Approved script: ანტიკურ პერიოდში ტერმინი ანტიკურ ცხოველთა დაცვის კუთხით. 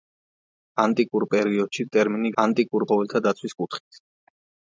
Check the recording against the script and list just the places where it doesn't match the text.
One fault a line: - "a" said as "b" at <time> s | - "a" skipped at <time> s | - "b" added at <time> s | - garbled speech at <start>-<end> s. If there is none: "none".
none